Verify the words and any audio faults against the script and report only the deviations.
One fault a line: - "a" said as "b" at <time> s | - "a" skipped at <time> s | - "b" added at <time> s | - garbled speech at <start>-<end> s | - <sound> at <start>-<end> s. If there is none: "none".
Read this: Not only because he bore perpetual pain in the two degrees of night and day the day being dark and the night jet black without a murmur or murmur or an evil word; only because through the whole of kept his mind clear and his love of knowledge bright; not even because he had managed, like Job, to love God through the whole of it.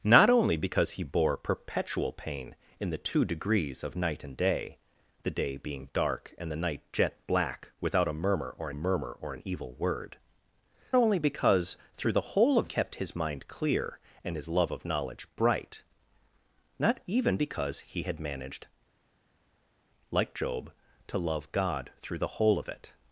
none